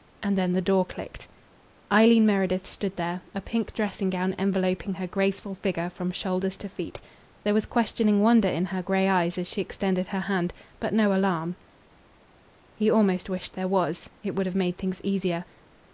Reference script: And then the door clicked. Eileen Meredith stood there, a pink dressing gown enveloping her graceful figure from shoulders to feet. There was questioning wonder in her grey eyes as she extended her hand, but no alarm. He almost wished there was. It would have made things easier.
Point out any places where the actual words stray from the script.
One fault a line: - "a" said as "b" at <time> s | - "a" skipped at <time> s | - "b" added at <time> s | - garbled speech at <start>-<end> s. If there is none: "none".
none